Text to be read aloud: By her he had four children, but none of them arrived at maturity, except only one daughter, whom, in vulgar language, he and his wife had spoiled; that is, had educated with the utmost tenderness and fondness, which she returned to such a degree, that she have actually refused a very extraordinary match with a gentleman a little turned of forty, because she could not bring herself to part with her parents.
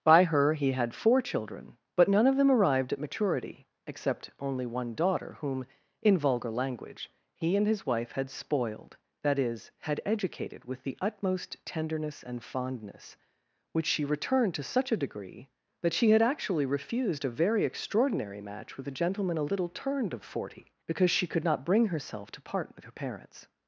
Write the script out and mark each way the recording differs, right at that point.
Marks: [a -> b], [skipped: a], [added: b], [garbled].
By her he had four children, but none of them arrived at maturity, except only one daughter, whom, in vulgar language, he and his wife had spoiled; that is, had educated with the utmost tenderness and fondness, which she returned to such a degree, that she [have -> had] actually refused a very extraordinary match with a gentleman a little turned of forty, because she could not bring herself to part with her parents.